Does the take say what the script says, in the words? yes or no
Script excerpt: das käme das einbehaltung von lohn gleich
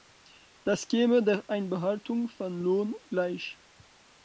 no